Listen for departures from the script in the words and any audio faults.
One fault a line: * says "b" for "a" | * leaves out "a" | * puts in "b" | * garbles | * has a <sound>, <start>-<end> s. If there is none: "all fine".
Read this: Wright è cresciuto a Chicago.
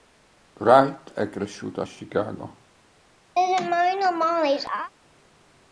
* has a laugh, 3.4-4.9 s